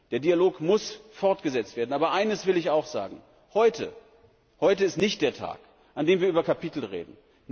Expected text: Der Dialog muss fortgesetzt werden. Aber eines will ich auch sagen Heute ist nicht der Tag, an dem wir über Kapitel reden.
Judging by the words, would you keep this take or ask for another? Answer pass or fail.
pass